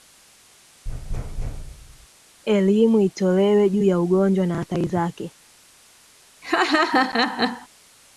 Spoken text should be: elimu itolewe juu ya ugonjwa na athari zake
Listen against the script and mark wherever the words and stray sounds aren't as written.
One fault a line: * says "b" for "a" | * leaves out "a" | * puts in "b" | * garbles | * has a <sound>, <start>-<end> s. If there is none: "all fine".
* has a thud, 0.8-2.1 s
* has a laugh, 6.4-7.7 s